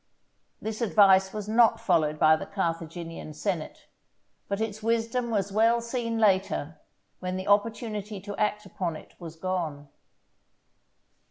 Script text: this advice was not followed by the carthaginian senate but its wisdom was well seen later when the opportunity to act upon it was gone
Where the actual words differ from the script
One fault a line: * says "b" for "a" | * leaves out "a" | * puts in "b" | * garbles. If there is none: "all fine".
all fine